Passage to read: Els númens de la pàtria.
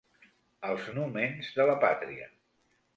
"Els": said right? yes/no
yes